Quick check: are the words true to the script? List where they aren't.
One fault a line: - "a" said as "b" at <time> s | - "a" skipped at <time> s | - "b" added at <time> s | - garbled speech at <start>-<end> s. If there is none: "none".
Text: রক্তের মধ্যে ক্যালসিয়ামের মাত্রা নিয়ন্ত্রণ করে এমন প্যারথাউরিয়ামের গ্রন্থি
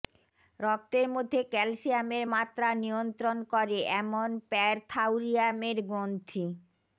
none